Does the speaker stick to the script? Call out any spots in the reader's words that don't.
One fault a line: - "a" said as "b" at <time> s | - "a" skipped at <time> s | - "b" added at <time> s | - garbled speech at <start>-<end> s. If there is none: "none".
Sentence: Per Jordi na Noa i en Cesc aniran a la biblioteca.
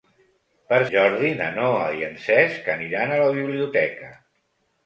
none